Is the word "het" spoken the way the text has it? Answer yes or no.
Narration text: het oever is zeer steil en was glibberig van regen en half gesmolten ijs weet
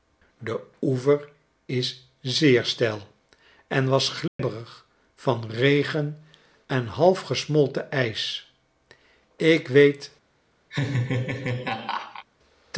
no